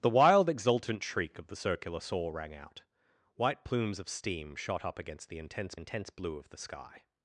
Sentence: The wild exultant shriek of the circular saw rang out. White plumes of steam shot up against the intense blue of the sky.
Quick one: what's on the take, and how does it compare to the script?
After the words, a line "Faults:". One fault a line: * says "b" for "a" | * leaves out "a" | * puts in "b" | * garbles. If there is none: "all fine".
The wild exultant shriek of the circular saw rang out. White plumes of steam shot up against the intense intense blue of the sky.
Faults:
* puts in "intense"